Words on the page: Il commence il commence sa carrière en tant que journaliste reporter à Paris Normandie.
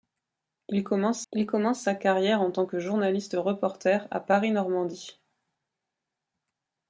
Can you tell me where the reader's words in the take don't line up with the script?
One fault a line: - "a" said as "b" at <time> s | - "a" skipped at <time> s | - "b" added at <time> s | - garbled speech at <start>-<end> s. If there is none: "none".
none